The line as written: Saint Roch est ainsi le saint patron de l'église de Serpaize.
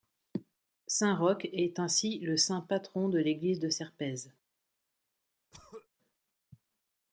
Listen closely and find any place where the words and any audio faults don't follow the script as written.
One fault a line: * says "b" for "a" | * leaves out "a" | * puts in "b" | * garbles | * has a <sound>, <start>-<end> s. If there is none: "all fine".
* has a throat clearing, 5.5-5.9 s